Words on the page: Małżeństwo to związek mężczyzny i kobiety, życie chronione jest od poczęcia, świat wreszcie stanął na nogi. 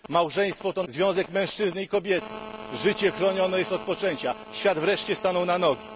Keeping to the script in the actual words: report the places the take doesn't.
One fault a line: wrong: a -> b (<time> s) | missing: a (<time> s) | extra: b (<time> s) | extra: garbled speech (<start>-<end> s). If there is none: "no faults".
no faults